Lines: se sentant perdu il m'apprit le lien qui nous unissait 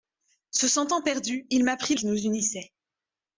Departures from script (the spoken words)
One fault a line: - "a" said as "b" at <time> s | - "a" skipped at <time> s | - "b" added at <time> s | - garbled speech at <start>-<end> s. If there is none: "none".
- "le lien" skipped at 1.9 s